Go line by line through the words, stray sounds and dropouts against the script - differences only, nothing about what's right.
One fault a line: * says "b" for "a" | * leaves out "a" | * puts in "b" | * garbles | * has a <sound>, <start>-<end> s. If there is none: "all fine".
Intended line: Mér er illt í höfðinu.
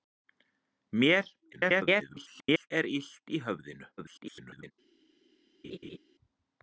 * garbles
* garbles
* has a laugh, 5.6-6.0 s